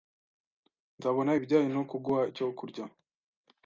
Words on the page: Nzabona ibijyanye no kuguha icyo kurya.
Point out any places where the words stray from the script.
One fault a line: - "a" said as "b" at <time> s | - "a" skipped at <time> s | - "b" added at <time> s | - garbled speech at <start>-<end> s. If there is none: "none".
none